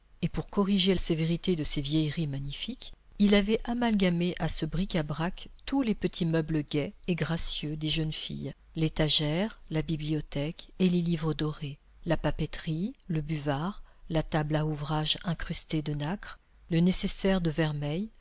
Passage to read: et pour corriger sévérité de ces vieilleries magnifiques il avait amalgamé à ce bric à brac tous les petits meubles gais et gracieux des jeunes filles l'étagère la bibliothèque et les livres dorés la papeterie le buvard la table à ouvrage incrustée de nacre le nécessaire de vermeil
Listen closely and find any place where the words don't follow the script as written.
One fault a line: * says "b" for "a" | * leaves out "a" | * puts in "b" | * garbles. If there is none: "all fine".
all fine